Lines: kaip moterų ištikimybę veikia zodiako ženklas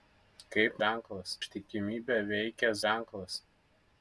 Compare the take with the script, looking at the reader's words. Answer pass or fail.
fail